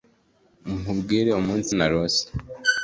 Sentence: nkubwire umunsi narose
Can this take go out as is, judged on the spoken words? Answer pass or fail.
pass